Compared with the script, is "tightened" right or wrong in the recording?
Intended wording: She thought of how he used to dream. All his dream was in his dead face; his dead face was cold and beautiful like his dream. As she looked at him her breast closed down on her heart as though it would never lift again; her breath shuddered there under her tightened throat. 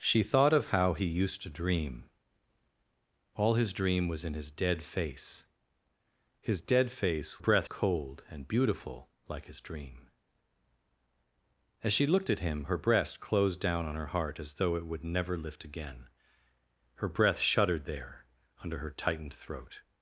right